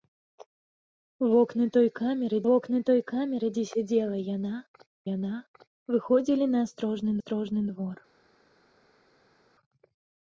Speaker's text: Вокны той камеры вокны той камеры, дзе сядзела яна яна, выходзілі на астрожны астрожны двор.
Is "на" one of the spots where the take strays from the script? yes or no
no